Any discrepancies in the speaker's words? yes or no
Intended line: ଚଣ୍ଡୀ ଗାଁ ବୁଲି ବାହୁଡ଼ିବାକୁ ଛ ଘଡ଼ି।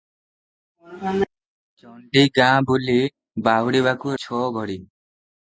no